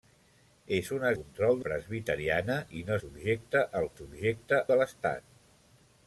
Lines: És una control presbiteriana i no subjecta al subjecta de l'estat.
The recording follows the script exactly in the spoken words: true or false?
true